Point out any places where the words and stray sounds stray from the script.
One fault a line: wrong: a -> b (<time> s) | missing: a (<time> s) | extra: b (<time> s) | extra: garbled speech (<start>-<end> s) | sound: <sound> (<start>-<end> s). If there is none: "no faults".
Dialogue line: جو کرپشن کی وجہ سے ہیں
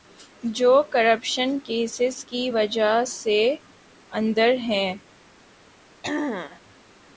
extra: کیسز (1.6 s)
extra: اندر (4.1 s)
sound: throat clearing (6.0-6.6 s)